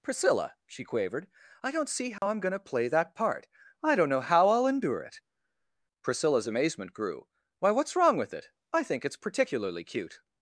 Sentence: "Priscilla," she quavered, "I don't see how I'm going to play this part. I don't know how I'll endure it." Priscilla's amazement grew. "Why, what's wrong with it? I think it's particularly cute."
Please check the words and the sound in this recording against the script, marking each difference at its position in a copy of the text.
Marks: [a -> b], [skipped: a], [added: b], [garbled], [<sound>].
"Priscilla," she quavered, "I don't see how [dropout] I'm going to play [this -> that] part. I don't know how I'll endure it." Priscilla's amazement grew. "Why, what's wrong with it? I think it's particularly cute."